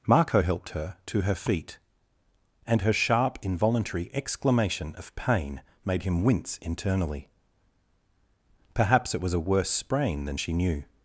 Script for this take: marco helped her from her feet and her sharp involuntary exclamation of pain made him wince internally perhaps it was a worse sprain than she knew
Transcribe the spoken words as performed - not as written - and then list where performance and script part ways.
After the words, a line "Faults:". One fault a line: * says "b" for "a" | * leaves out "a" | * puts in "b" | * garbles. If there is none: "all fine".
marco helped her to her feet and her sharp involuntary exclamation of pain made him wince internally perhaps it was a worse sprain than she knew
Faults:
* says "to" for "from"